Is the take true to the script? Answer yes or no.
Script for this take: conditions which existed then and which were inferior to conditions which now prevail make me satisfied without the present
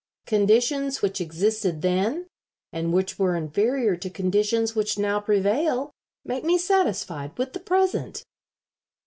no